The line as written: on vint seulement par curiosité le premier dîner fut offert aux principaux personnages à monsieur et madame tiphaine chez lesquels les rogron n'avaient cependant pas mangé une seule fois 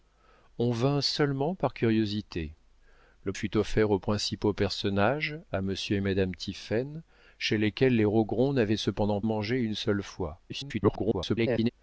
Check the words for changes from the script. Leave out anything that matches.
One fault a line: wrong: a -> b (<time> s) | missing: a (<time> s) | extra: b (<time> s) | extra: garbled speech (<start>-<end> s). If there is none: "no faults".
missing: premier dîner (3.3 s)
missing: pas (9.2 s)
extra: garbled speech (10.5-11.7 s)